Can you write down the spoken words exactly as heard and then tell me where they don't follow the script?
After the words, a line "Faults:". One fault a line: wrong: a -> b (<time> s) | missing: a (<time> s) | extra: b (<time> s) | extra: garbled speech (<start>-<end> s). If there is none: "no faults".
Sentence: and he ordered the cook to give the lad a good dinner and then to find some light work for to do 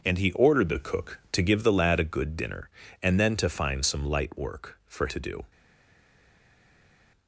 and he ordered the cook to give the lad a good dinner and then to find some light work for to do
Faults:
no faults